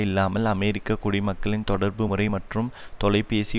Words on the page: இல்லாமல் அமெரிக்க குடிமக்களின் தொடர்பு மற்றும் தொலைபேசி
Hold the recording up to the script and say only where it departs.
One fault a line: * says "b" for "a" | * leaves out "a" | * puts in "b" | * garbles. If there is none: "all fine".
* puts in "முறை"